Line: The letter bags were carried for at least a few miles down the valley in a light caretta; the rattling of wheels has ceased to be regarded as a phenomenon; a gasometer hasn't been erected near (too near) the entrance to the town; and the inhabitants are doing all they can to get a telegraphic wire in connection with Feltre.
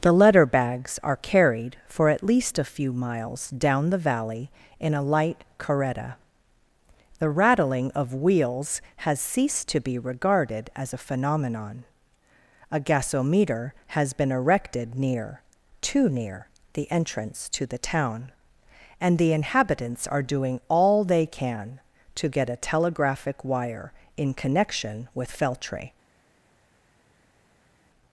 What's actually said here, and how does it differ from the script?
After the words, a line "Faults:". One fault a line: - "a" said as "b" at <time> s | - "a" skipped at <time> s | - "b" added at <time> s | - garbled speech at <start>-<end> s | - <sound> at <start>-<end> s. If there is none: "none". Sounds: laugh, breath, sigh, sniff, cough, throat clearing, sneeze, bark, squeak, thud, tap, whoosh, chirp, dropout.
The letter bags are carried for at least a few miles down the valley in a light caretta; the rattling of wheels has ceased to be regarded as a phenomenon; a gasometer has been erected near (too near) the entrance to the town; and the inhabitants are doing all they can to get a telegraphic wire in connection with Feltre.
Faults:
- "were" said as "are" at 1.0 s
- "hasn't" said as "has" at 13.9 s